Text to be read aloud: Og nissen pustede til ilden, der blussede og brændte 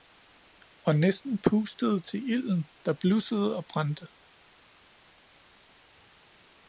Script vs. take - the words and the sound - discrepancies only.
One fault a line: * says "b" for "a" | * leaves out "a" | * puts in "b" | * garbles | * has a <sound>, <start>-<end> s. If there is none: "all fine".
all fine